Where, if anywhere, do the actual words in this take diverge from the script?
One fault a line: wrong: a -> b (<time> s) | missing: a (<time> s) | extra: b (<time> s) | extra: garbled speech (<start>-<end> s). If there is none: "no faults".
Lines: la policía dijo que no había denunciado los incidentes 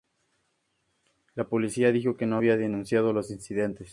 no faults